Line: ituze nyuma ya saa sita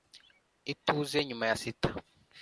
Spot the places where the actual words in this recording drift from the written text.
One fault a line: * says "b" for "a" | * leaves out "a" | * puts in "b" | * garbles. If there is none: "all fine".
* leaves out "saa"